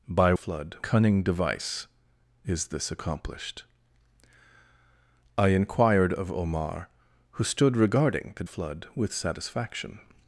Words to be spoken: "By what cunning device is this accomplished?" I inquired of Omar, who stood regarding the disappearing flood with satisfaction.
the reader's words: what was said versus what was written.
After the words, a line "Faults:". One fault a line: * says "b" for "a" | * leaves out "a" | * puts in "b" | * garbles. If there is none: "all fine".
"By flood cunning device is this accomplished?" I inquired of Omar, who stood regarding the flood with satisfaction.
Faults:
* says "flood" for "what"
* leaves out "disappearing"